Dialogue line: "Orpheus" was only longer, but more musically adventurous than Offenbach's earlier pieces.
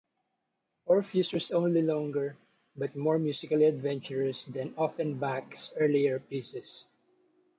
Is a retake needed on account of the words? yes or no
no